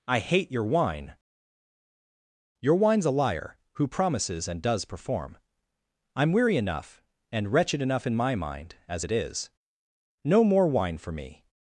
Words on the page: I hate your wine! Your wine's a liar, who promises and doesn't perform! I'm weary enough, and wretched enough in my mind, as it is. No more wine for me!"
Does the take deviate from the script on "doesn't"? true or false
true